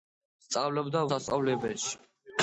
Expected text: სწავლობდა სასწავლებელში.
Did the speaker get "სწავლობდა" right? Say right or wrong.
right